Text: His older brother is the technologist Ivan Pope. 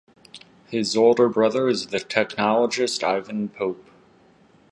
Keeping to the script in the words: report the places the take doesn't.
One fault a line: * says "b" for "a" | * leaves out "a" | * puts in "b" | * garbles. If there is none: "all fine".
all fine